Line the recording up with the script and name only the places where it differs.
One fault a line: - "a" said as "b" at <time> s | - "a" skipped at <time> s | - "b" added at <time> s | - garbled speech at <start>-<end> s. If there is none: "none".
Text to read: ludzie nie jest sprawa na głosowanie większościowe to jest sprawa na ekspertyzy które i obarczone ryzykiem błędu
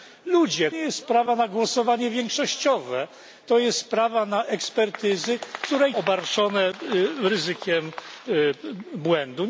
none